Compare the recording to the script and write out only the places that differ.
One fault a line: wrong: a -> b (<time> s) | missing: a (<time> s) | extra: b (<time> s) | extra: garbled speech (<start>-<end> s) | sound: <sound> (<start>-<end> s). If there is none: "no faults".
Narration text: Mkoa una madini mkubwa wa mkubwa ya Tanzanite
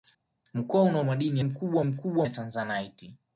no faults